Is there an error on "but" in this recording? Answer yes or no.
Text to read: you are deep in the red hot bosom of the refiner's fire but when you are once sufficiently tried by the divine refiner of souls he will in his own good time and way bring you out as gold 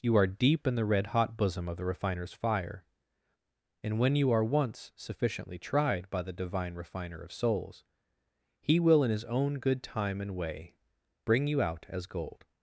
yes